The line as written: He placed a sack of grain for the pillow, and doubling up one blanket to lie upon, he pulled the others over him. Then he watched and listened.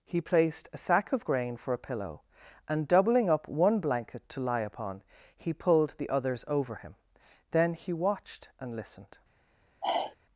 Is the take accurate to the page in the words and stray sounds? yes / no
no